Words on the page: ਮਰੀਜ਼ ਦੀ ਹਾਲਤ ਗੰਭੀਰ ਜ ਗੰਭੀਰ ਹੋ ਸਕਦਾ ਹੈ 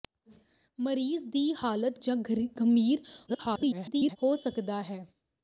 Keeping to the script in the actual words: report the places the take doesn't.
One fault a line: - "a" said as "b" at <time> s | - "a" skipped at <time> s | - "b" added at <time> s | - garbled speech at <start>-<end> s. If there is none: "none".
- "ਗੰਭੀਰ" skipped at 2.0 s
- garbled speech at 3.3-4.2 s